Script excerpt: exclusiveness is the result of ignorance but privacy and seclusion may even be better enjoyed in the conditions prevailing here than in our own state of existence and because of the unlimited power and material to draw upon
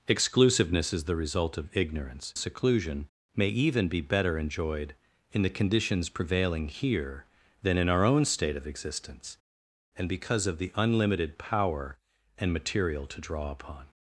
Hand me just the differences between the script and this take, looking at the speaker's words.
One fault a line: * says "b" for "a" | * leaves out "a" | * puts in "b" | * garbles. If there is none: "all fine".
* leaves out "but privacy and"